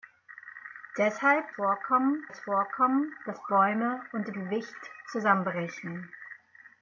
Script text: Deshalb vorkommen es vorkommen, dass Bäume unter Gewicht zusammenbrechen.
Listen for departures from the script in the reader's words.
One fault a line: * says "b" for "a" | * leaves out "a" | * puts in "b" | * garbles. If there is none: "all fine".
all fine